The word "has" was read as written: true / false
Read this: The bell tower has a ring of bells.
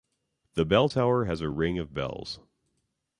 true